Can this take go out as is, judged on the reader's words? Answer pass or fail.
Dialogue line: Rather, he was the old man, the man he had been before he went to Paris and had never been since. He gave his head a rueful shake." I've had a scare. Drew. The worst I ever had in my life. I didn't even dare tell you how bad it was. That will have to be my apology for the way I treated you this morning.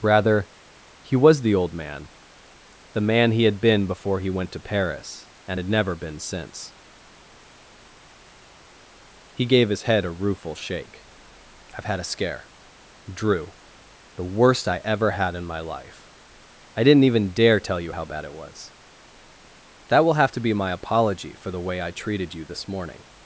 pass